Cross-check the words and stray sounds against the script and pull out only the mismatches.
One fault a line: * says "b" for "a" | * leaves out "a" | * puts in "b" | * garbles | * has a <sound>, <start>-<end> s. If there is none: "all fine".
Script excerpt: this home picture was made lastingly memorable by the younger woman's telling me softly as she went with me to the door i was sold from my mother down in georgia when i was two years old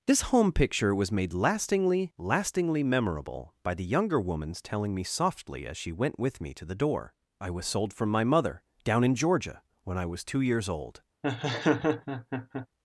* puts in "lastingly"
* has a laugh, 11.2-12.7 s